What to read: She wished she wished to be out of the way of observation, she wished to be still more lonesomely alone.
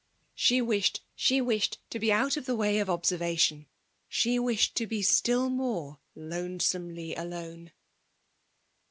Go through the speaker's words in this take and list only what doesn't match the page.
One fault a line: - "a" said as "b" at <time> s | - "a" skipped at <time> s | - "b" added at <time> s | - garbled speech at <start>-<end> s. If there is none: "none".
none